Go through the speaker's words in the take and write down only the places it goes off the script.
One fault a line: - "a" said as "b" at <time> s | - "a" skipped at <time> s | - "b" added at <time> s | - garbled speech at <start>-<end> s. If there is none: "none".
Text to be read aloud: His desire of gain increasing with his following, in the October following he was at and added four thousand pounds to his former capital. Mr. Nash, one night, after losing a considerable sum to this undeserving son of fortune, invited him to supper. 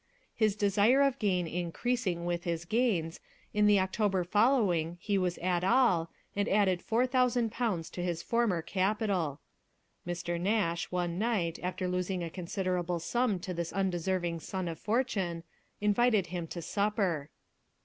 - "following" said as "gains" at 2.6 s
- "all" added at 5.6 s